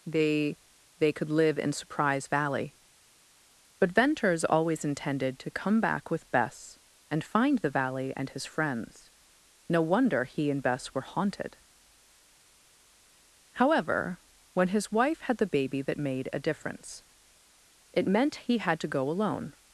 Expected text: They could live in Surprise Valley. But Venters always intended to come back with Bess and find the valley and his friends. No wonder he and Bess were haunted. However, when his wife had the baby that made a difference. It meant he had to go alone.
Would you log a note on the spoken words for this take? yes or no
yes